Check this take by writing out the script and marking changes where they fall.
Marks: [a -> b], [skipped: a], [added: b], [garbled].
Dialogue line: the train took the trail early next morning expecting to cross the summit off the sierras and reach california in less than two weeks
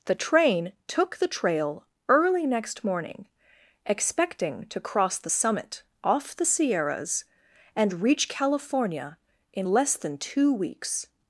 the train took the trail early next morning expecting to cross the summit off the sierras and reach california in less than two weeks